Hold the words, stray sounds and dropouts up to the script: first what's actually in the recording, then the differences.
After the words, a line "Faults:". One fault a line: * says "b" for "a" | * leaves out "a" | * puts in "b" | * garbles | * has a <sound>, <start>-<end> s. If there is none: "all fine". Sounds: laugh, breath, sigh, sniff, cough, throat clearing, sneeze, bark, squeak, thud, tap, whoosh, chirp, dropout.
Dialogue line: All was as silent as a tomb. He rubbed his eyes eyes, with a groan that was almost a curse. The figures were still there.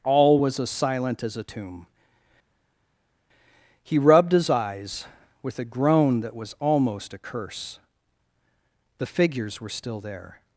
All was as silent as a tomb. He rubbed his eyes, with a groan that was almost a curse. The figures were still there.
Faults:
* leaves out "eyes"